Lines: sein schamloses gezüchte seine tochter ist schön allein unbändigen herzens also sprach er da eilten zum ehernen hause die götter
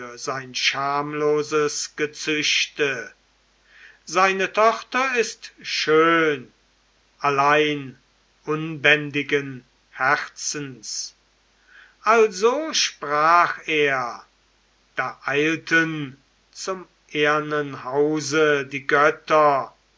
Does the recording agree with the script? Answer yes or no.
yes